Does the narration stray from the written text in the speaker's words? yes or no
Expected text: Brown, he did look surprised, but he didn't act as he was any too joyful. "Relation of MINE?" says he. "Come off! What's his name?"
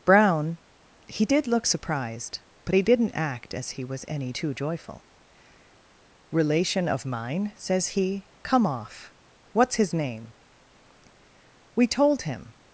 yes